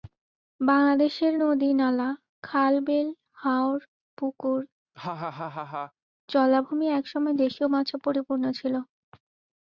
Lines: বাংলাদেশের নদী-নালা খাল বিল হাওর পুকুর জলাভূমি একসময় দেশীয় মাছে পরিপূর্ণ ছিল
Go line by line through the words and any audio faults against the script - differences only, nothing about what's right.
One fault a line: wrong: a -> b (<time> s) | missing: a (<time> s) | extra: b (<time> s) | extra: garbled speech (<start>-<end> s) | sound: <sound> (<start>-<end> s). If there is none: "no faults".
sound: laugh (4.9-5.9 s)